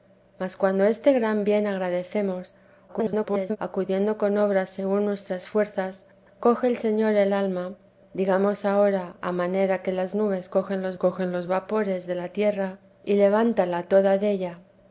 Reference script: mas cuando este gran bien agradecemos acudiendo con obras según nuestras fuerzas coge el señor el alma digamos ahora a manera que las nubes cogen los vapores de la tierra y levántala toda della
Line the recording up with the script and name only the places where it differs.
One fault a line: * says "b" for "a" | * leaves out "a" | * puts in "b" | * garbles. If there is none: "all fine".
* garbles
* puts in "cogen los"